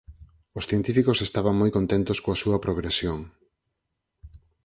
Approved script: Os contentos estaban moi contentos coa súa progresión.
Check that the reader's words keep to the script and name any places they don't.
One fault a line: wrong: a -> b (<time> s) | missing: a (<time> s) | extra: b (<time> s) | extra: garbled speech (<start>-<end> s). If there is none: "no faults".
wrong: contentos -> científicos (0.7 s)